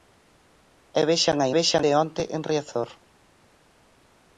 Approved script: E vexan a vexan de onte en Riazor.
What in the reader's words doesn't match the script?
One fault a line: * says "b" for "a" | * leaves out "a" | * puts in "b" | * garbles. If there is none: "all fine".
all fine